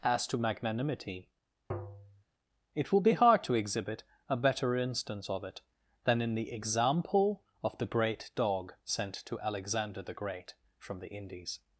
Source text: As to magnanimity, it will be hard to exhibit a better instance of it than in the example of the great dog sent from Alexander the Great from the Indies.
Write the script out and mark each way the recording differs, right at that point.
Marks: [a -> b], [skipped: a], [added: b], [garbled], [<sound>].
As to magnanimity, [tap] it will be hard to exhibit a better instance of it than in the example of the great dog sent [from -> to] Alexander the Great from the Indies.